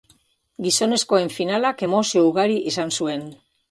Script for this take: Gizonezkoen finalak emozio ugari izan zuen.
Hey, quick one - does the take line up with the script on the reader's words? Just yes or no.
yes